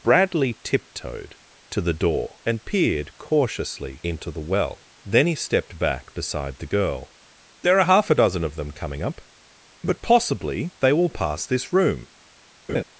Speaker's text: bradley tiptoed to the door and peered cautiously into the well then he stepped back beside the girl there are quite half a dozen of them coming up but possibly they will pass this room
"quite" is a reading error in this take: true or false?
true